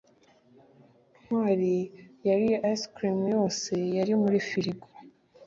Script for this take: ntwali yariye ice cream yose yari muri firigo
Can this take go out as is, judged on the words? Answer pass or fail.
pass